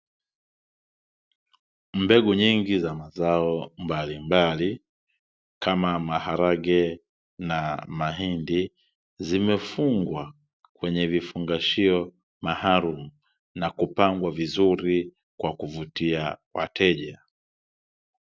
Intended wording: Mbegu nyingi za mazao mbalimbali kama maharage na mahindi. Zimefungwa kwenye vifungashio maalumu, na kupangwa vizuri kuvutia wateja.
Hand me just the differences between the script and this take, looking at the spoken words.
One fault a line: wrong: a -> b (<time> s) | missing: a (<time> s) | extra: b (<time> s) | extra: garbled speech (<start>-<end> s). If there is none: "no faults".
extra: kwa (15.4 s)